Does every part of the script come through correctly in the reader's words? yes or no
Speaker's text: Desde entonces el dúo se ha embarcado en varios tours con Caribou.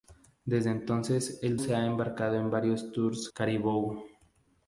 no